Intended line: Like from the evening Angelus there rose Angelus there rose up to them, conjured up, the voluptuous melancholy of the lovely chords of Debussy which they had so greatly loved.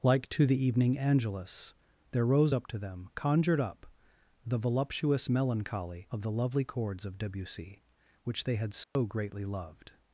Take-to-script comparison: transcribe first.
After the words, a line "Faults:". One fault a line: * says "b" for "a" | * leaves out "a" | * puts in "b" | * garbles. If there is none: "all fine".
Like to the evening Angelus there rose up to them, conjured up, the voluptuous melancholy of the lovely chords of Debussy which they had so greatly loved.
Faults:
* says "to" for "from"
* leaves out "Angelus there rose"